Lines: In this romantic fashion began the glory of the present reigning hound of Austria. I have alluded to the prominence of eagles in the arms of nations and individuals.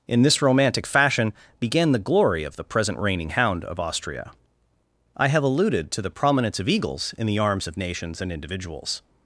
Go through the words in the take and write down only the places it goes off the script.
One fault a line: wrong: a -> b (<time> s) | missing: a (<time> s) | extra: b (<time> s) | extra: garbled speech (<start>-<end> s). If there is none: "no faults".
no faults